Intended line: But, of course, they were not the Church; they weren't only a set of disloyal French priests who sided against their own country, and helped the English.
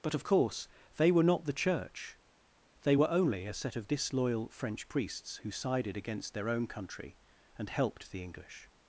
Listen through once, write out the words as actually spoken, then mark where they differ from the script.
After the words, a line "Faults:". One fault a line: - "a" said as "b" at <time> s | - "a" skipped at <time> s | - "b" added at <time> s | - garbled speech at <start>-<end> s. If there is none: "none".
But, of course, they were not the Church; they were only a set of disloyal French priests who sided against their own country, and helped the English.
Faults:
- "weren't" said as "were" at 2.9 s